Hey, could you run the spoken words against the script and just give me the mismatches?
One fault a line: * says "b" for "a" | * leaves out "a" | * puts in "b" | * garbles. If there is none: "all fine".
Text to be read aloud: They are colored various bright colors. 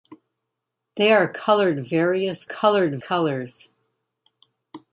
* says "colored" for "bright"